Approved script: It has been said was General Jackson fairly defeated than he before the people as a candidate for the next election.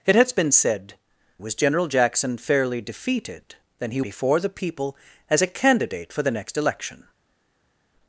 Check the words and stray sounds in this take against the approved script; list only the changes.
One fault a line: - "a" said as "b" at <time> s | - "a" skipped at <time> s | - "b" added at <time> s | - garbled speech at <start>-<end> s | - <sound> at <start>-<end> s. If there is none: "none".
none